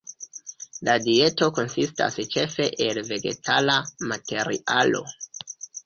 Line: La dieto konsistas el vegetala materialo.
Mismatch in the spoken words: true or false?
true